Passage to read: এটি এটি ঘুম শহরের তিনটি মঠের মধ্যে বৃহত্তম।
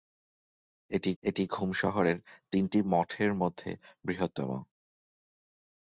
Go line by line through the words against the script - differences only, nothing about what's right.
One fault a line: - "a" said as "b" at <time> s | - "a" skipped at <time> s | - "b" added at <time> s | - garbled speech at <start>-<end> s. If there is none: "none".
none